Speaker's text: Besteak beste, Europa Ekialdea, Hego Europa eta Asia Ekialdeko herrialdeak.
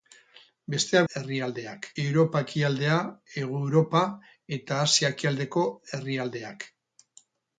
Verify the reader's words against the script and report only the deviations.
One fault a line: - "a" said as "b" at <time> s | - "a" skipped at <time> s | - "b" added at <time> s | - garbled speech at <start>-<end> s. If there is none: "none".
- "beste" said as "herrialdeak" at 1.1 s